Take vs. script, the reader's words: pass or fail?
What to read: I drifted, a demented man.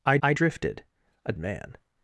fail